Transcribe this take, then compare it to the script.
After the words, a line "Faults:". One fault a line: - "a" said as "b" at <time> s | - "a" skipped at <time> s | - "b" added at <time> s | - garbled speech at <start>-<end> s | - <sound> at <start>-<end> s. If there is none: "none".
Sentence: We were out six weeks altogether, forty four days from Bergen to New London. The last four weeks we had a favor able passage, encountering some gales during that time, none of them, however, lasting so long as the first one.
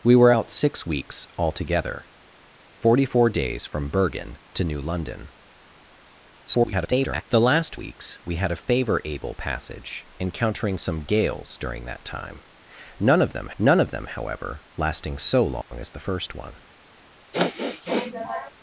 We were out six weeks altogether, forty four days from Bergen to New London. [garbled] The last weeks we had a favor able passage, encountering some gales during that time, none of them none of them, however, lasting so long as the first one.
Faults:
- garbled speech at 6.5-7.2 s
- "four" skipped at 7.7 s
- "none of them" added at 13.6 s
- dropout at 15.6-15.7 s
- sniff at 17.3-18.5 s